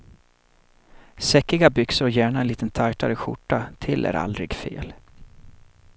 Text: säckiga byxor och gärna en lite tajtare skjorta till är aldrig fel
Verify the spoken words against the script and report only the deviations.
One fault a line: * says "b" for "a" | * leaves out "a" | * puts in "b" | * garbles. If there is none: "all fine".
all fine